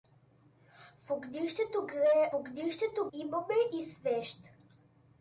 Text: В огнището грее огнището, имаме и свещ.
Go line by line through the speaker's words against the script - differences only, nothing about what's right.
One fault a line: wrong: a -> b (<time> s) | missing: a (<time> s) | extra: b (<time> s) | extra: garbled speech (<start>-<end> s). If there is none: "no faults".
no faults